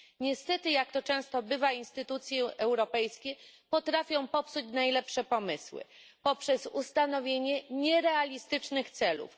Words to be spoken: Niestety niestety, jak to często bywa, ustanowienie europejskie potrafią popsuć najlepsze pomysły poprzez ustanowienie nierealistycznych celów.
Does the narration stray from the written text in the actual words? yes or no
yes